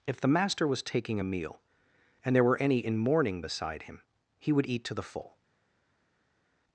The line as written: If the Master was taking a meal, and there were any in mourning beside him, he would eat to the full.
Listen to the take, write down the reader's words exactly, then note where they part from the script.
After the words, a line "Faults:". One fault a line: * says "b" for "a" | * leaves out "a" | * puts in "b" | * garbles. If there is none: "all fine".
If the Master was taking a meal, and there were any in mourning beside him, he would eat to the full.
Faults:
all fine